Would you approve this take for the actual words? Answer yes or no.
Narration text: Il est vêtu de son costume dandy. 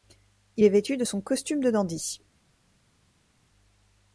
no